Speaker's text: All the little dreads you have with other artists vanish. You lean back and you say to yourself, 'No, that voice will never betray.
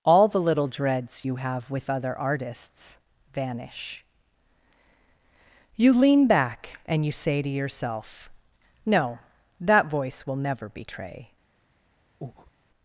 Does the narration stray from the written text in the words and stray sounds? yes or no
yes